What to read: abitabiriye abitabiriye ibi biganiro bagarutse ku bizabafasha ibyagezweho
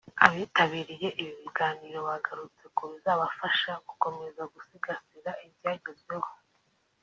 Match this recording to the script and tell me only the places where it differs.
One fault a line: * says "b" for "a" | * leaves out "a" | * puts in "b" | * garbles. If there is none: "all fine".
* leaves out "abitabiriye"
* puts in "gukomeza gusigasira"